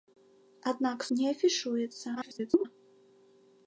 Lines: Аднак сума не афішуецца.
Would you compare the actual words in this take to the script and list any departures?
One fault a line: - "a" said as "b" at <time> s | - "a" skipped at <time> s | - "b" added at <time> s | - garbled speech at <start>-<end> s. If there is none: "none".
- "сума" skipped at 1.1 s
- garbled speech at 2.1-2.7 s